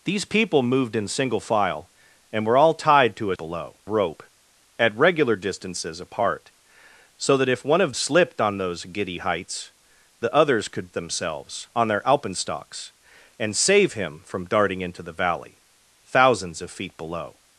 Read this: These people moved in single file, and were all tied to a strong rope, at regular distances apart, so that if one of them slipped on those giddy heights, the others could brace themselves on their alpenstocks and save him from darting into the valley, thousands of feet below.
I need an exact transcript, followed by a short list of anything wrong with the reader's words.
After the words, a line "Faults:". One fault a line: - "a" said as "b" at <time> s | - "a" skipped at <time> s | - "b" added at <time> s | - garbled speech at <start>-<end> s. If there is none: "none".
These people moved in single file, and were all tied to a below rope, at regular distances apart, so that if one of slipped on those giddy heights, the others could themselves on their alpenstocks and save him from darting into the valley, thousands of feet below.
Faults:
- "strong" said as "below" at 3.4 s
- "them" skipped at 7.9 s
- "brace" skipped at 10.9 s